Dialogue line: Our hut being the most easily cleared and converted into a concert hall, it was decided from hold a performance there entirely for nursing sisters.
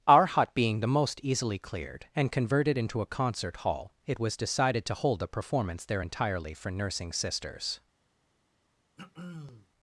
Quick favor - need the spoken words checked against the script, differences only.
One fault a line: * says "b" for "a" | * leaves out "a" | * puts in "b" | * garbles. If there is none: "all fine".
* says "to" for "from"